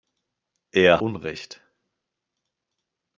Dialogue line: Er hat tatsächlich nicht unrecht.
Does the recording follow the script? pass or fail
fail